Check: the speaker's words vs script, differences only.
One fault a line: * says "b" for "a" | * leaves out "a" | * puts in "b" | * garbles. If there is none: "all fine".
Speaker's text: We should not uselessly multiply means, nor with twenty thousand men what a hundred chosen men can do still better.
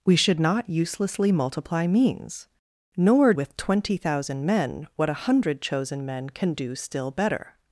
all fine